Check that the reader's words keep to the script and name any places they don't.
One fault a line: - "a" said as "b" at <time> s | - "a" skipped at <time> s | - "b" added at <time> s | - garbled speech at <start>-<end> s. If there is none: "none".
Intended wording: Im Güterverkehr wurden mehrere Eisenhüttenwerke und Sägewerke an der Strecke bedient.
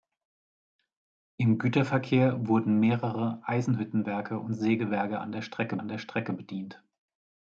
- "an der Strecke" added at 5.8 s